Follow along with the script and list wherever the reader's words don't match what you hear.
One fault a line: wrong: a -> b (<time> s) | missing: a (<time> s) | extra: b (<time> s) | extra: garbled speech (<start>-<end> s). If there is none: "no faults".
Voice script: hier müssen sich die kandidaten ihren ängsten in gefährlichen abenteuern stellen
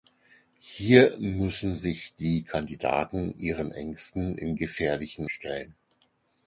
missing: abenteuern (5.3 s)